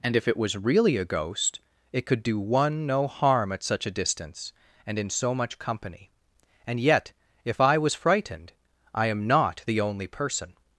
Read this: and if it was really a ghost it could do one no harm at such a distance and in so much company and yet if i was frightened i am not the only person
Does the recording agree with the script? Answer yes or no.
yes